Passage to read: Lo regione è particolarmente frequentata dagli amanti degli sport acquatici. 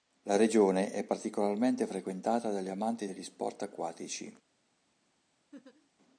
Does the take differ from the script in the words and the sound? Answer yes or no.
yes